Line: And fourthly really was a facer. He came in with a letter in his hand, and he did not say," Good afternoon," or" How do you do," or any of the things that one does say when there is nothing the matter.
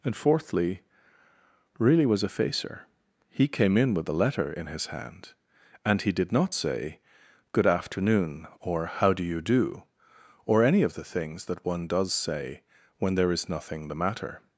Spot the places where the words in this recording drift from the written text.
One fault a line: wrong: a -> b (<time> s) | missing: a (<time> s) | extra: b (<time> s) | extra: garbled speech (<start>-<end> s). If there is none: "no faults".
no faults